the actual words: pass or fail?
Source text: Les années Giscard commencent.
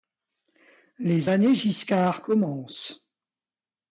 pass